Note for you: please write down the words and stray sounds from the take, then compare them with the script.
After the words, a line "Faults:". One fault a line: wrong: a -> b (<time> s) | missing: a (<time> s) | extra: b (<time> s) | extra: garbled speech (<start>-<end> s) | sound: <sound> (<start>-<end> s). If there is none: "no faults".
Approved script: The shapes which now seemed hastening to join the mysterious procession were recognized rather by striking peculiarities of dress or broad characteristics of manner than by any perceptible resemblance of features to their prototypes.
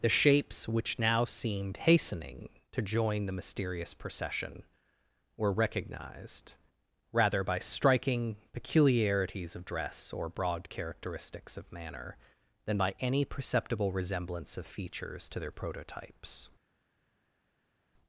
The shapes which now seemed hastening to join the mysterious procession were recognized rather by striking peculiarities of dress or broad characteristics of manner than by any perceptible resemblance of features to their prototypes.
Faults:
no faults